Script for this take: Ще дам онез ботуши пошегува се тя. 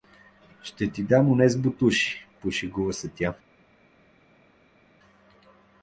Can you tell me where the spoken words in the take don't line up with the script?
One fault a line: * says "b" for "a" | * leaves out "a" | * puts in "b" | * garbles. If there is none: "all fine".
* puts in "ти"